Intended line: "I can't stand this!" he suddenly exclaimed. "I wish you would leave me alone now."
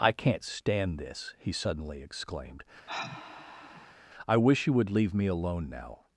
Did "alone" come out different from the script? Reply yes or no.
no